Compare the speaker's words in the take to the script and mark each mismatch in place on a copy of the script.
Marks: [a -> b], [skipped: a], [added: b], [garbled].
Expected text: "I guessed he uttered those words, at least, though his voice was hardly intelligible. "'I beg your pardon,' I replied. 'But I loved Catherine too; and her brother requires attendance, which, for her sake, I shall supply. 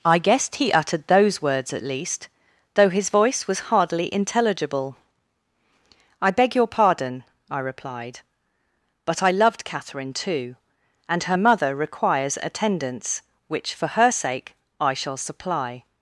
"I guessed he uttered those words, at least, though his voice was hardly intelligible. "'I beg your pardon,' I replied. 'But I loved Catherine too; and her [brother -> mother] requires attendance, which, for her sake, I shall supply.